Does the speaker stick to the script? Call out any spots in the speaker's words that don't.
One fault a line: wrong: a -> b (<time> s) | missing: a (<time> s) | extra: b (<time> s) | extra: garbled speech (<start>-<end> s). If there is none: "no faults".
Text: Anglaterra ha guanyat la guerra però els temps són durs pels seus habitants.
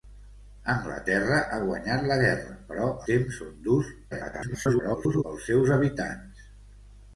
missing: els (2.9 s)
extra: garbled speech (4.1-5.2 s)